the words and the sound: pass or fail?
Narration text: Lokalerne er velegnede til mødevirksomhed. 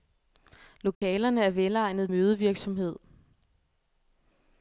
fail